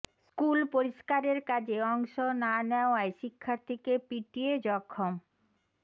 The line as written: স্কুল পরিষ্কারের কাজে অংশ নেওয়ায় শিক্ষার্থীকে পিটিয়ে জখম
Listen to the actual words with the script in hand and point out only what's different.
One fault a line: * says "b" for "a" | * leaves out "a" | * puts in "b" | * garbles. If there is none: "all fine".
* puts in "না"